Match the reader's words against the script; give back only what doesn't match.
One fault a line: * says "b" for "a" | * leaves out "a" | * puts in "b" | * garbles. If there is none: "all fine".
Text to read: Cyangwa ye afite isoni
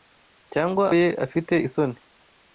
all fine